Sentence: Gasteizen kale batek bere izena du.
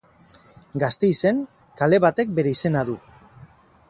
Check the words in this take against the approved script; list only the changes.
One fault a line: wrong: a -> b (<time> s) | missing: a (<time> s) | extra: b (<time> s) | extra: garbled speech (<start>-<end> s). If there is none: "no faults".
no faults